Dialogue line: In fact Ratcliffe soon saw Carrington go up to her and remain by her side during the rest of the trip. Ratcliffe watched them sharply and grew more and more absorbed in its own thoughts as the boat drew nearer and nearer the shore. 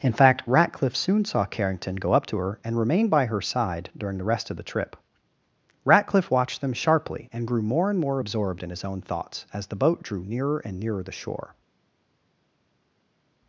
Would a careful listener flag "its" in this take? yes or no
yes